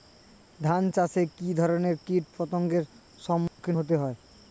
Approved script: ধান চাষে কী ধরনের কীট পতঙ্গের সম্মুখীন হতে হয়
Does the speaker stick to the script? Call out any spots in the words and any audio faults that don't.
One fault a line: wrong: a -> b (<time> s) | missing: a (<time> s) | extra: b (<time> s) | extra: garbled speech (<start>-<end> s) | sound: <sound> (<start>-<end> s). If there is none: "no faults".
sound: dropout (3.5-3.6 s)